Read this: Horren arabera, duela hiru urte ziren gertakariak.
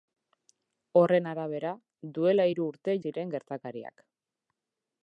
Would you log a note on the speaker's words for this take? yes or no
no